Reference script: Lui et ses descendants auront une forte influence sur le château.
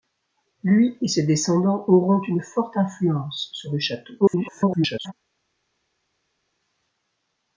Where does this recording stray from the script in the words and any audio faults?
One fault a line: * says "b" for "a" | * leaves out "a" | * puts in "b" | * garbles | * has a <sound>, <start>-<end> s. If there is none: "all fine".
* garbles